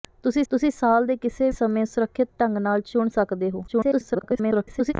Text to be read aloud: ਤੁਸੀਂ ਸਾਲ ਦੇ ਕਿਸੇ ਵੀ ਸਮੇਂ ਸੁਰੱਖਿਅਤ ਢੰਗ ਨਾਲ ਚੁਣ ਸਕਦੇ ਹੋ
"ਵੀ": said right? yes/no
no